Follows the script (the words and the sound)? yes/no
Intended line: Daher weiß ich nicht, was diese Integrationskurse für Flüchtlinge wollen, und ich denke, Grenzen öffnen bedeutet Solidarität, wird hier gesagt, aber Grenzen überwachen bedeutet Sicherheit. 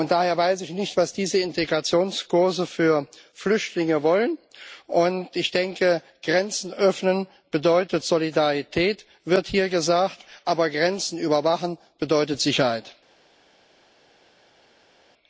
yes